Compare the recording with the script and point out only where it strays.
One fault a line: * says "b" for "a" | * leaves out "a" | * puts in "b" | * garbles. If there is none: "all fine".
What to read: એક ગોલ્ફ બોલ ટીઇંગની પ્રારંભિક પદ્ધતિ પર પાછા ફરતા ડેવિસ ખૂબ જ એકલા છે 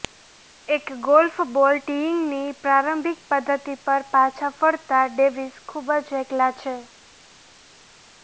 all fine